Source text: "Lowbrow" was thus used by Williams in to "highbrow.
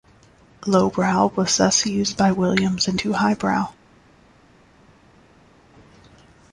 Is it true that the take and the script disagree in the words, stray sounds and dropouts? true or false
false